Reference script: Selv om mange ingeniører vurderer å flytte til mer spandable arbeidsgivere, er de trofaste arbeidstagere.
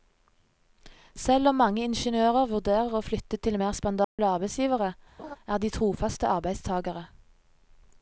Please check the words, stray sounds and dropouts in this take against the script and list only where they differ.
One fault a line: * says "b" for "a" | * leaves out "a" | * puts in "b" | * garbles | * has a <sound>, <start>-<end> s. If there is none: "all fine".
* has a dropout, 4.0-4.2 s
* has a laugh, 5.2-5.4 s